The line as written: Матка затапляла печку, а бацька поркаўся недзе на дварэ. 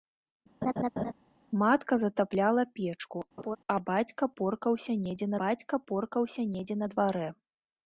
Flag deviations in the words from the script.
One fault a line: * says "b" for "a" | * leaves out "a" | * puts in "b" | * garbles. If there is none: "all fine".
* puts in "бацька поркаўся недзе"